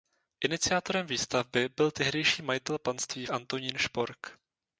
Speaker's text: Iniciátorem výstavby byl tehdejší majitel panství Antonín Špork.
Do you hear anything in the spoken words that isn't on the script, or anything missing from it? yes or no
no